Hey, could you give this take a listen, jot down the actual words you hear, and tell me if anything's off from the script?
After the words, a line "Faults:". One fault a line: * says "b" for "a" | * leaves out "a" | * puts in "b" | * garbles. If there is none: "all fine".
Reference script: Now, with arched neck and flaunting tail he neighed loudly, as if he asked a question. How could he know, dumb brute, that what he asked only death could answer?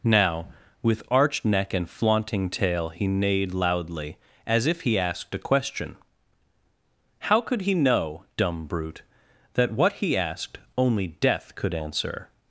Now, with arched neck and flaunting tail he neighed loudly, as if he asked a question. How could he know, dumb brute, that what he asked only death could answer?
Faults:
all fine